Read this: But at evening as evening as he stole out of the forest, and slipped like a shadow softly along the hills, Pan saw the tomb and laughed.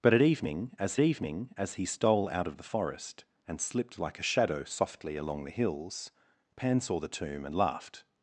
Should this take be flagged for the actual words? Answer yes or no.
no